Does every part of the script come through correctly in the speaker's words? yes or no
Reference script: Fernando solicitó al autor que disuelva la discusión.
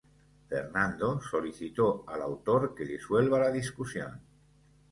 yes